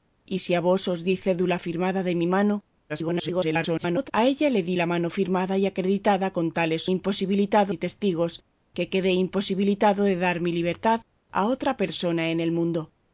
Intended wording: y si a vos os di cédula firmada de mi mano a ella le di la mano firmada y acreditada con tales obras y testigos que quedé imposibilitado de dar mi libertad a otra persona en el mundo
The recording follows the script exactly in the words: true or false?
false